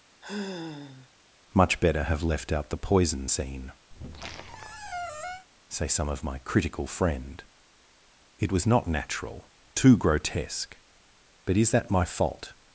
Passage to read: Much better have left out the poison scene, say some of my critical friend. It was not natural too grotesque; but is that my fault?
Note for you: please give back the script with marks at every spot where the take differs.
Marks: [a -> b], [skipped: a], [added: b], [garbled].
Much better have left out the poison scene, say some of my critical friend. It was not natural too grotesque; but is that my fault?